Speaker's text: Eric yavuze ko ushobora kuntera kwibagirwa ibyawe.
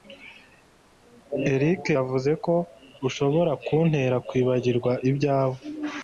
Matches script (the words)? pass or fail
pass